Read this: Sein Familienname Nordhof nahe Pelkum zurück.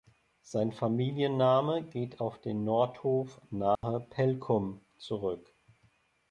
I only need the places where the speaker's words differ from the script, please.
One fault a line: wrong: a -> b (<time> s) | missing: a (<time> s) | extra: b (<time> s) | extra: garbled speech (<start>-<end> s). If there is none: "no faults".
extra: geht auf den (1.8 s)